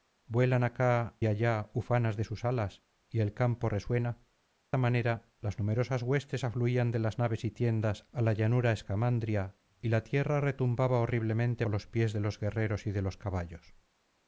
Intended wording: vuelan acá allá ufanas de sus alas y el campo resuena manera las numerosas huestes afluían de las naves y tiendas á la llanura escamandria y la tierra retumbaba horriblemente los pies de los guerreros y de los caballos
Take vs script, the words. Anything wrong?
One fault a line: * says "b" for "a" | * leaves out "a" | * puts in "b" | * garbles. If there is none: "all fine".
all fine